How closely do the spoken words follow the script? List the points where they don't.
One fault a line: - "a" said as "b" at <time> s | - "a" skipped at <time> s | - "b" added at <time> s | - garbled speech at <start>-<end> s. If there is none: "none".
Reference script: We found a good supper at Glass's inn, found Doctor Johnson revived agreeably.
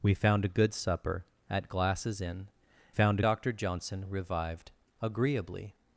none